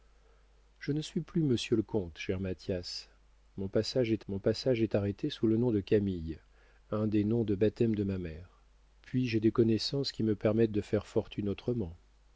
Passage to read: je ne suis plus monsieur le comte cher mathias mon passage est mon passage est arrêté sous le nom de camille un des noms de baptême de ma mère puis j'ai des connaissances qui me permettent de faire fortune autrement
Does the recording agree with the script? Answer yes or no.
yes